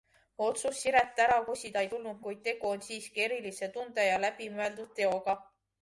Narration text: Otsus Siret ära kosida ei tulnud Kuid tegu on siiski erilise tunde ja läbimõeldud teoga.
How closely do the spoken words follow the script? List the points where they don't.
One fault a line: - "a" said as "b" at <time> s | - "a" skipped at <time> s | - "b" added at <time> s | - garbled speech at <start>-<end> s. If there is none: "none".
none